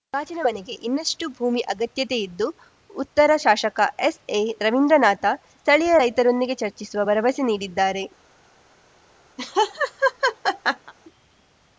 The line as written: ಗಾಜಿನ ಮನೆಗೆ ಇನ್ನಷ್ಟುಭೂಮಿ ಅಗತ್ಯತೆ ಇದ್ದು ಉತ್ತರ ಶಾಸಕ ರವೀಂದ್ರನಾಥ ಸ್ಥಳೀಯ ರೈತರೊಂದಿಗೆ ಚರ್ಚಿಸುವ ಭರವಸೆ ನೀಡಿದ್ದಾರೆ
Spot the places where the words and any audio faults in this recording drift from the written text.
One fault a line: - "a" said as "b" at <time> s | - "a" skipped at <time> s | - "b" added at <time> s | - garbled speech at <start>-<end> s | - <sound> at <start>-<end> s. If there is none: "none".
- "ಎಸ್‌ಎ" added at 4.0 s
- laugh at 9.4-10.9 s